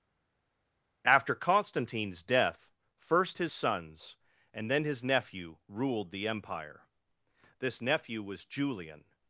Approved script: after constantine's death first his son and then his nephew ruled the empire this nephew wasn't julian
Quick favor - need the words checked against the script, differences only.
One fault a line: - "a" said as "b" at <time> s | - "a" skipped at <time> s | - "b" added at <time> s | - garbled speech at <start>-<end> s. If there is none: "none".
- "son" said as "sons" at 3.5 s
- "wasn't" said as "was" at 8.2 s